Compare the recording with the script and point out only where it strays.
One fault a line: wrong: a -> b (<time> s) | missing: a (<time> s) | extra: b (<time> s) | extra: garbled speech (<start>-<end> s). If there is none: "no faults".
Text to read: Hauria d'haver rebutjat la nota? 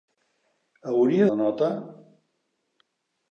missing: d'haver rebutjat (1.3 s)